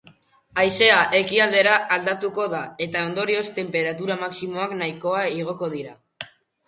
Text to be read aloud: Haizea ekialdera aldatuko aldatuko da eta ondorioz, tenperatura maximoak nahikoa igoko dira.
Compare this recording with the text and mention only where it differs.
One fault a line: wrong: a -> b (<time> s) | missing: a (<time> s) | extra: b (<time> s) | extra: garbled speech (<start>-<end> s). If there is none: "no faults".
missing: aldatuko (2.5 s)